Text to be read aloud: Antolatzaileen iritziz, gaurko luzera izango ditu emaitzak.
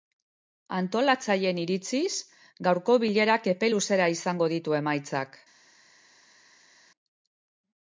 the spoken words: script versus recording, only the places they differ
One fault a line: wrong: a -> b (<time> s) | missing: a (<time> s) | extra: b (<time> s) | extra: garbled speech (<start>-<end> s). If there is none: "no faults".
extra: bilerak epe (3.0 s)